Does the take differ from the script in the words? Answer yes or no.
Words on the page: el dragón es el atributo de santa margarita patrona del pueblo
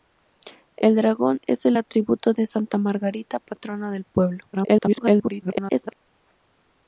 yes